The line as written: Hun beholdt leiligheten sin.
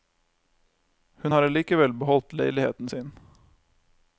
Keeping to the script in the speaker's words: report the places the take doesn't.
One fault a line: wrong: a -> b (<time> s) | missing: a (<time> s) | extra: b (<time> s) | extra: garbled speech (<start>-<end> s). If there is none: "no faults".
extra: har allikevel (1.3 s)